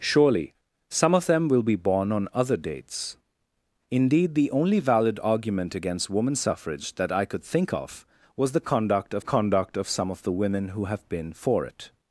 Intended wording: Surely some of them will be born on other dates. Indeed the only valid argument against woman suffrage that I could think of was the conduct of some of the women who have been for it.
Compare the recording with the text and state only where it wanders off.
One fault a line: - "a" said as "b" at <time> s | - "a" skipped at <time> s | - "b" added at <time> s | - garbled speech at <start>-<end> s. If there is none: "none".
- "conduct of" added at 9.2 s